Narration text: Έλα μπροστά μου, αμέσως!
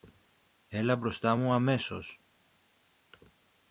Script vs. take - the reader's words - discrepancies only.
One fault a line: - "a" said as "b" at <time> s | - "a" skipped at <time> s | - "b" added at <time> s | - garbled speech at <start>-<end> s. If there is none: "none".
none